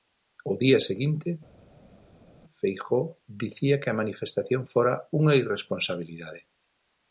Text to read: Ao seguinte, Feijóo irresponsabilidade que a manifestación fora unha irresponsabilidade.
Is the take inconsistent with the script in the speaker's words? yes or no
yes